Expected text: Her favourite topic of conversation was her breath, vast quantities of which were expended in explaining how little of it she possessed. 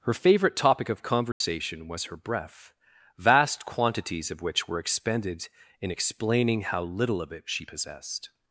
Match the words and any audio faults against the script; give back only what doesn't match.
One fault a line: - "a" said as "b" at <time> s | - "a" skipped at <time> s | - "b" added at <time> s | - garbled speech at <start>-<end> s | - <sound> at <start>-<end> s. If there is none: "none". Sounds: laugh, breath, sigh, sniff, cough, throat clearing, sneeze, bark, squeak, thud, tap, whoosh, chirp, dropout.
- dropout at 1.3-1.4 s